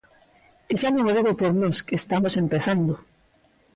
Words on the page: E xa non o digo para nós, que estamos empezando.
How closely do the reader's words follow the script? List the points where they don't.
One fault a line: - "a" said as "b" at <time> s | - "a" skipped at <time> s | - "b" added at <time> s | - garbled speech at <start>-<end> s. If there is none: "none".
- "para" said as "por" at 1.4 s